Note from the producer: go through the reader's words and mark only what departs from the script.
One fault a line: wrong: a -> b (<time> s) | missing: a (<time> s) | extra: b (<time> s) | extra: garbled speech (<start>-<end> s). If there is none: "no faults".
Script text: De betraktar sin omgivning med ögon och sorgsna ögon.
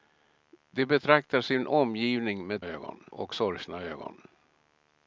no faults